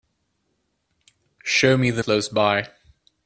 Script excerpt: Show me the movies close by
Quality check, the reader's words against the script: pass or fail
fail